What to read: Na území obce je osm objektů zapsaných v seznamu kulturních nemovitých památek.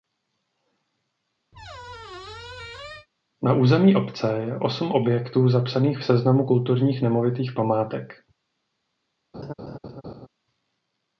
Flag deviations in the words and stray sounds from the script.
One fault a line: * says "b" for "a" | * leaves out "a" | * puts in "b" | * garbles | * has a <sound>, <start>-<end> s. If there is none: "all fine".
* has a squeak, 1.5-3.1 s
* has a laugh, 9.3-10.3 s